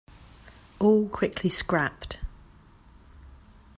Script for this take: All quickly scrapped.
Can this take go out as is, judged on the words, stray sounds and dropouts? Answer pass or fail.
pass